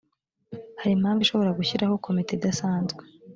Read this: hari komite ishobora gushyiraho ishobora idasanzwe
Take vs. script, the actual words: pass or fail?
fail